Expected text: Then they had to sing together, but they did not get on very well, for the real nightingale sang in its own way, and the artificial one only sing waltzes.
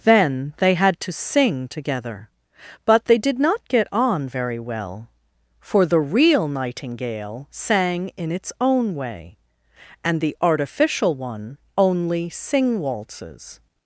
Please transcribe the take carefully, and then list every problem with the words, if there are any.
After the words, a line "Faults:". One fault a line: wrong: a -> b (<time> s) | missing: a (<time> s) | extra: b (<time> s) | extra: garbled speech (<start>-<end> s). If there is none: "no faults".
Then they had to sing together, but they did not get on very well, for the real nightingale sang in its own way, and the artificial one only sing waltzes.
Faults:
no faults